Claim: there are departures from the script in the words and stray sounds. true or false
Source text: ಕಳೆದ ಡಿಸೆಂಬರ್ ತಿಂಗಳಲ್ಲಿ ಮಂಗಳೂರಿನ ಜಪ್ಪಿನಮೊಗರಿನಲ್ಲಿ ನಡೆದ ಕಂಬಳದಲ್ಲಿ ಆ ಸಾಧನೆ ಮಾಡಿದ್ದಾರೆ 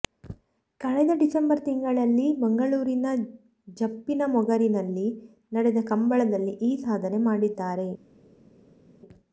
true